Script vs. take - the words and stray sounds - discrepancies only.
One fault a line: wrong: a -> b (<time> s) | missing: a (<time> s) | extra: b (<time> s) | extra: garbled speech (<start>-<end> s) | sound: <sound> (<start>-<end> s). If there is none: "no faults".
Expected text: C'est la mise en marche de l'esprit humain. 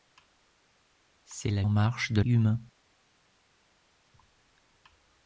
missing: mise (1.6 s)
missing: l'esprit (2.2 s)